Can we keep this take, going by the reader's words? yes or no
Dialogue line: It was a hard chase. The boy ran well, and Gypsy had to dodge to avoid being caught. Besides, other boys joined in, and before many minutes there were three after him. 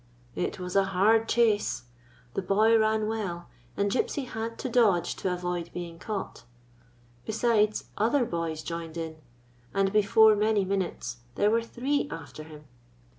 yes